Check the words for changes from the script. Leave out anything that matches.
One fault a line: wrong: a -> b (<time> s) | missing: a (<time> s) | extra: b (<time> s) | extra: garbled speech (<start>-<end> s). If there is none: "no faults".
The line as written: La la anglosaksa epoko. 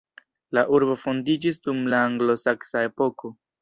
extra: urbo fondiĝis dum (0.8 s)